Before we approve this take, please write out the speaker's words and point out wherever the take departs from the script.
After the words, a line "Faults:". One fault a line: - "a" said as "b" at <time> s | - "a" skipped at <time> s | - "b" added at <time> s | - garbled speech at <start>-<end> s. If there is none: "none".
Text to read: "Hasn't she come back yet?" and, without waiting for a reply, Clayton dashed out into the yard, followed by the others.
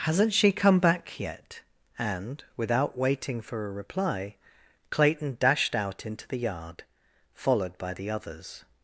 "Hasn't she come back yet?" and, without waiting for a reply, Clayton dashed out into the yard, followed by the others.
Faults:
none